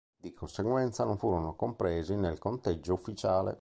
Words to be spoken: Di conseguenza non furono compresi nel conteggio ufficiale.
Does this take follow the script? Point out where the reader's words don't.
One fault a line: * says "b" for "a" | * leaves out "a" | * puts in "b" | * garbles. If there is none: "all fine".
all fine